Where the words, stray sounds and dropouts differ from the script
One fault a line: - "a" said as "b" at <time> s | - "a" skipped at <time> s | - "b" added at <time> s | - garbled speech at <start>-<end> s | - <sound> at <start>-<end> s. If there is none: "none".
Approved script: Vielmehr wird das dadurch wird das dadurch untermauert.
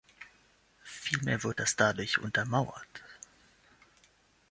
- "wird das dadurch" skipped at 2.2 s